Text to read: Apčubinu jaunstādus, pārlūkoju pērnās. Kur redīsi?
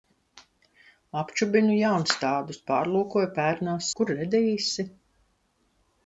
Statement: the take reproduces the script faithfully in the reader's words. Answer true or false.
true